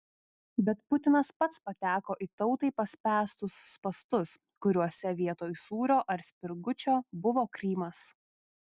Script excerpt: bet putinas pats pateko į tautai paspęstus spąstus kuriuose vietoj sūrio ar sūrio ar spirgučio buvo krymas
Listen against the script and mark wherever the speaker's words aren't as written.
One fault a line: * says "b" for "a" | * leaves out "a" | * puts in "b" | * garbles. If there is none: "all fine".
* leaves out "sūrio ar"